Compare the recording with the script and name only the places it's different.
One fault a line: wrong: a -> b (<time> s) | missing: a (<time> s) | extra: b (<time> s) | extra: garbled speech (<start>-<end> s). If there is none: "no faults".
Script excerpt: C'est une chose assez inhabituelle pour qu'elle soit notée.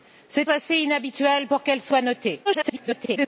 missing: une chose (0.5 s)
extra: garbled speech (2.4-3.3 s)